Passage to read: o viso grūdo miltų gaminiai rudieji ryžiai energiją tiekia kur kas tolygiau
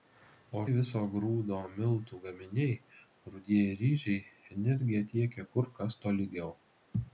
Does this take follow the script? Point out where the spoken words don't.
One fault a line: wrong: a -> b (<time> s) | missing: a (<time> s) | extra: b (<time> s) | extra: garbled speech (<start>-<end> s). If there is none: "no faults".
no faults